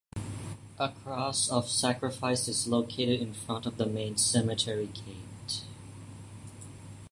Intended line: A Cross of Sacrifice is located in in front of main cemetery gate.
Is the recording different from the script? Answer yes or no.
yes